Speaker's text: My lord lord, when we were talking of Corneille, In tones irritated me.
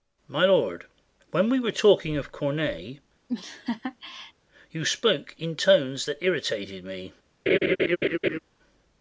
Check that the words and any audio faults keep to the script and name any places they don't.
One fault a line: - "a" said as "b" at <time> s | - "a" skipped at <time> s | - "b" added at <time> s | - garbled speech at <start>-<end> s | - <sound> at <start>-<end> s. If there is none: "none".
- "lord" skipped at 0.8 s
- laugh at 3.3-4.3 s
- "You spoke" added at 4.7 s
- "that" added at 6.0 s
- laugh at 7.5-8.4 s